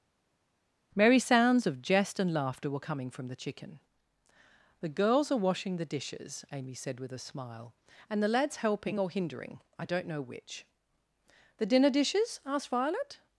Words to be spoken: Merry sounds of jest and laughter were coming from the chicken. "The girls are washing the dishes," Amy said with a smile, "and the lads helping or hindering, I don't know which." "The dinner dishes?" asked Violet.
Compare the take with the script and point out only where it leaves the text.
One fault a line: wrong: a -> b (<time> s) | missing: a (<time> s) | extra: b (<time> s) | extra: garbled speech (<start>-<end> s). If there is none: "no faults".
no faults